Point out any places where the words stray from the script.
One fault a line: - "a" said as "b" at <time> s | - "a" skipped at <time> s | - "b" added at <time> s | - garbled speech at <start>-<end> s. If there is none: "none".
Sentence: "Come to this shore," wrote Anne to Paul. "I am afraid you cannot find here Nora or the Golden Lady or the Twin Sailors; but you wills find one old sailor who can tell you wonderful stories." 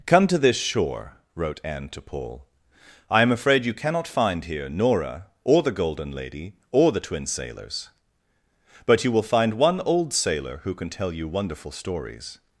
- "wills" said as "will" at 9.1 s